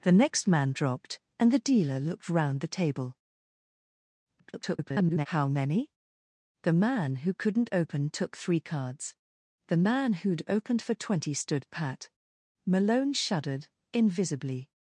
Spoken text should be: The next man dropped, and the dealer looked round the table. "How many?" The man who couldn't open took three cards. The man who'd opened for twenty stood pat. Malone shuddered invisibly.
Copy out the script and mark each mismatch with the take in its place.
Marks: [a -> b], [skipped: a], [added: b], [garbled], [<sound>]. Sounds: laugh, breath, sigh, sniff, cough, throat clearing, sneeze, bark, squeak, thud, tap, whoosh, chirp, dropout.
The next man dropped, and the dealer looked round the table. [garbled] "How many?" The man who couldn't open took three cards. The man who'd opened for twenty stood pat. Malone shuddered invisibly.